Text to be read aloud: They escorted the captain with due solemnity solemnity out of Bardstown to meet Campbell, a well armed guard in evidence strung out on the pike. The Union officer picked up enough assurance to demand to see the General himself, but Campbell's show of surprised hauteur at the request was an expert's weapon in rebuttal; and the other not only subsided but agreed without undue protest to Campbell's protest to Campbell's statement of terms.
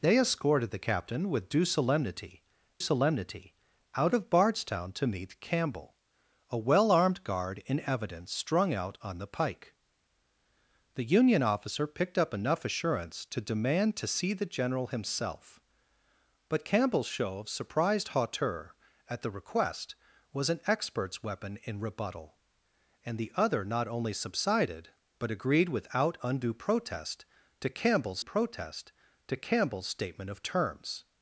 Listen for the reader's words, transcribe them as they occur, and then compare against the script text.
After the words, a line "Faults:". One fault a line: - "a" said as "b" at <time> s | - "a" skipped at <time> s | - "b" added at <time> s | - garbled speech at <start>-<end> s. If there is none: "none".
They escorted the captain with due solemnity solemnity out of Bardstown to meet Campbell, a well armed guard in evidence strung out on the pike. The Union officer picked up enough assurance to demand to see the General himself, but Campbell's show of surprised hauteur at the request was an expert's weapon in rebuttal; and the other not only subsided but agreed without undue protest to Campbell's protest to Campbell's statement of terms.
Faults:
none